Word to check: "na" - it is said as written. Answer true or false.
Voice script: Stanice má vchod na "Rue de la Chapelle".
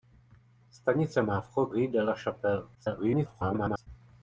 false